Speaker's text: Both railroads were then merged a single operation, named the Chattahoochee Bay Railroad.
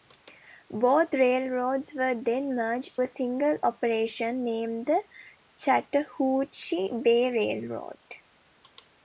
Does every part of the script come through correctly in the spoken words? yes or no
yes